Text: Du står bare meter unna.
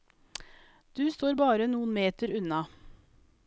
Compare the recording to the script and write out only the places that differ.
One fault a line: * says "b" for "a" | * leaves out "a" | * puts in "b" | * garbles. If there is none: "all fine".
* puts in "noen"